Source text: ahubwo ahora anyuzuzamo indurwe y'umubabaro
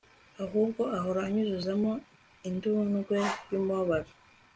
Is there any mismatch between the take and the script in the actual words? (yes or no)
no